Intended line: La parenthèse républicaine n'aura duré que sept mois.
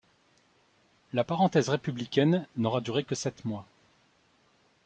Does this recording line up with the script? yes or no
yes